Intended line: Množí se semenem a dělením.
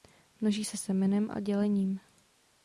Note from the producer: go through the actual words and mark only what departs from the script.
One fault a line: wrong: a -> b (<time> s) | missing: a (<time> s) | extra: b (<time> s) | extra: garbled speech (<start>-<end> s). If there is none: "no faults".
no faults